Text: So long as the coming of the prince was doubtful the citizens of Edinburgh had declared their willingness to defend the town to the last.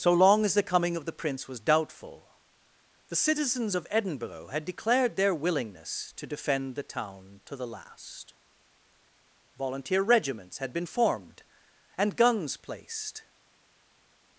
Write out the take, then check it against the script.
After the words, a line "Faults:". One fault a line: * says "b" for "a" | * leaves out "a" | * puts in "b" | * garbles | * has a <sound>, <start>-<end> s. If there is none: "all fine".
So long as the coming of the prince was doubtful the citizens of Edinburgh had declared their willingness to defend the town to the last. Volunteer regiments had been formed and guns placed
Faults:
* puts in "Volunteer regiments had been formed and guns placed"